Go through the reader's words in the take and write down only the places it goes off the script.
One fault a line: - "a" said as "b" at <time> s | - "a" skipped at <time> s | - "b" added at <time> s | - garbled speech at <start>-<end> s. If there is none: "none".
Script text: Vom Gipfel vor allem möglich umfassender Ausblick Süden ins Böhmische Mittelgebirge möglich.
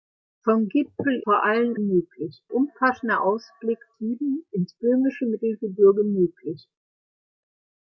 none